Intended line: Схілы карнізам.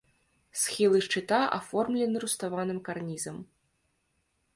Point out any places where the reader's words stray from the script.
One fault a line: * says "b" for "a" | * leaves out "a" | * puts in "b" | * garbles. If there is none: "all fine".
* puts in "шчыта аформлены руставаным"